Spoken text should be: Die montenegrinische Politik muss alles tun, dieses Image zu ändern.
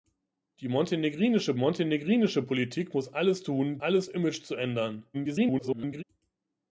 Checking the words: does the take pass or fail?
fail